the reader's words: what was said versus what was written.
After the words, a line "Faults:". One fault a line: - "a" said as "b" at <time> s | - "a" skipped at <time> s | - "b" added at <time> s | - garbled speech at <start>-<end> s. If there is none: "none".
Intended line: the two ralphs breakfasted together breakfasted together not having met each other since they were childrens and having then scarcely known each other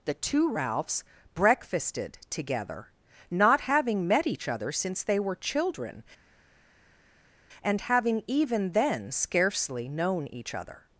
the two ralphs breakfasted together not having met each other since they were children and having even then scarcely known each other
Faults:
- "breakfasted together" skipped at 2.9 s
- "childrens" said as "children" at 5.3 s
- "even" added at 8.3 s